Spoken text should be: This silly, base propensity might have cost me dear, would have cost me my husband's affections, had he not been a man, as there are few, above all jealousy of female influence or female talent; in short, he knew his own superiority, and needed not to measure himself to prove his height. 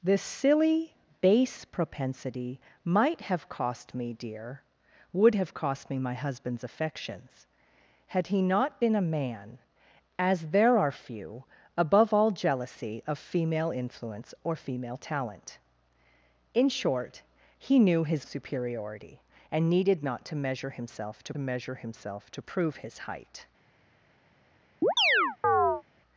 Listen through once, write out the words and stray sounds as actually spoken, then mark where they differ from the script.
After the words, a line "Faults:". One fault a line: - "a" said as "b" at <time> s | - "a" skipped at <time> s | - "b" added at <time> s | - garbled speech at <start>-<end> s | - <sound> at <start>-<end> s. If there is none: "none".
This silly, base propensity might have cost me dear, would have cost me my husband's affections, had he not been a man, as there are few, above all jealousy of female influence or female talent; in short, he knew his superiority, and needed not to measure himself to measure himself to prove his height.
Faults:
- "own" skipped at 18.2 s
- "measure himself to" added at 21.4 s
- chirp at 24.8-25.8 s